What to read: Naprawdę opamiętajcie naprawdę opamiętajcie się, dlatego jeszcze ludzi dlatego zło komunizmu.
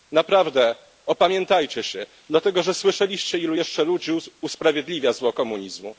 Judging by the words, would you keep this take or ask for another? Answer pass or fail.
fail